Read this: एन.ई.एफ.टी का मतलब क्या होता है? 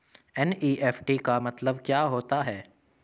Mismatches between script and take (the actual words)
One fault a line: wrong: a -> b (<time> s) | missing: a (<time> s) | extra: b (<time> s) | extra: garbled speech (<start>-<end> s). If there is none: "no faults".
no faults